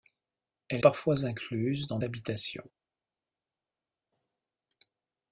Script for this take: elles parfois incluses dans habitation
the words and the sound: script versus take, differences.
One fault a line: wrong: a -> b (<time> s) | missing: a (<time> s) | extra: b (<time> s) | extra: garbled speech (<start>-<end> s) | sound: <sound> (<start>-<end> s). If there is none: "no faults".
no faults